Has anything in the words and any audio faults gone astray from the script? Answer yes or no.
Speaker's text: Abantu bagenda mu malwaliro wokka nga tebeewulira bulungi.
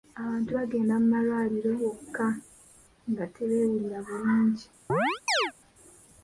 yes